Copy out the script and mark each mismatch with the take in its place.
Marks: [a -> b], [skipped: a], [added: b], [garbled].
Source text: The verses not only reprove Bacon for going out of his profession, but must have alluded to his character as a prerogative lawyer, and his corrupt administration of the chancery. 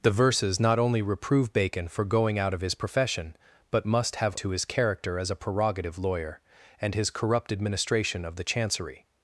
The verses not only reprove Bacon for going out of his profession, but must have [skipped: alluded] to his character as a prerogative lawyer, and his corrupt administration of the chancery.